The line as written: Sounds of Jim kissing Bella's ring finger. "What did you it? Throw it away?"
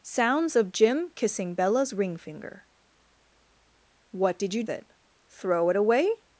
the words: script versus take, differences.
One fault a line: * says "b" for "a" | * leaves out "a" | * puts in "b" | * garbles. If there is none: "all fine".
all fine